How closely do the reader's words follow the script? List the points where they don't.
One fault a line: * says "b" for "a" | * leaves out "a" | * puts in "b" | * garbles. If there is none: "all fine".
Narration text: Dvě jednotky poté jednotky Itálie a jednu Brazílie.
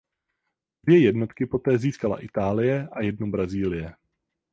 * says "získala" for "jednotky"